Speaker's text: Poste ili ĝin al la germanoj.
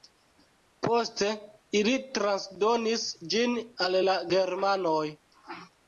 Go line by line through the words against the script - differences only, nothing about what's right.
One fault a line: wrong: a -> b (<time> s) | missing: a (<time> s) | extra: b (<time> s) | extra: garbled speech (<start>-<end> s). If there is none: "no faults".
extra: transdonis (2.2 s)